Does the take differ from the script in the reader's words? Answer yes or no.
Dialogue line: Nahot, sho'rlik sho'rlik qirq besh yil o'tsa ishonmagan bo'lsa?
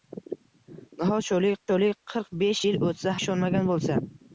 no